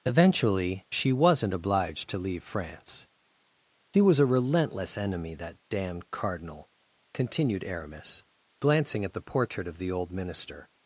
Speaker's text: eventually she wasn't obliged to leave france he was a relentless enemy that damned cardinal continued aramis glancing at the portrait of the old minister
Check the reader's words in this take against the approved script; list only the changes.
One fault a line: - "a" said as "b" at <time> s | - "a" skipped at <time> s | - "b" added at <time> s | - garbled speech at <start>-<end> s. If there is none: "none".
none